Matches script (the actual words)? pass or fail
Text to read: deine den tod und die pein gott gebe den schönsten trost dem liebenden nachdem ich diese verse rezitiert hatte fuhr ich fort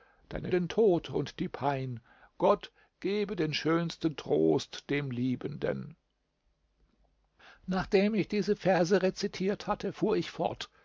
pass